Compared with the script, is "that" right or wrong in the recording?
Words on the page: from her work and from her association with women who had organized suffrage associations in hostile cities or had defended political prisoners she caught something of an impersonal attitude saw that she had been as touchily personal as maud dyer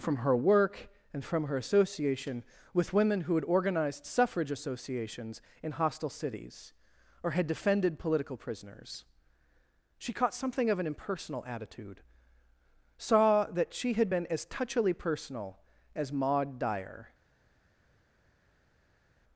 right